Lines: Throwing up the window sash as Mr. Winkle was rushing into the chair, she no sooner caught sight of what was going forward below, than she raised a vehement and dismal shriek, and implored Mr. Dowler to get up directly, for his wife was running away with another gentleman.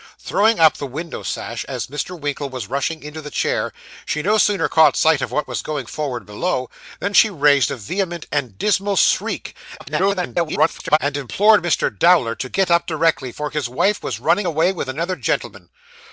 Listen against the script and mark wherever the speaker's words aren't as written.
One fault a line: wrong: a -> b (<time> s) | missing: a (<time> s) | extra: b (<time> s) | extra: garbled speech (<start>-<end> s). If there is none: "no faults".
extra: garbled speech (9.8-11.0 s)